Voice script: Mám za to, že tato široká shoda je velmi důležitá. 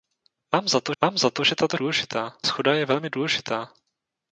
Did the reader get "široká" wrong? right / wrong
wrong